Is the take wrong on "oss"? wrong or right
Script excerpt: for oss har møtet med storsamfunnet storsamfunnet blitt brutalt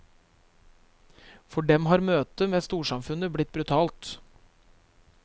wrong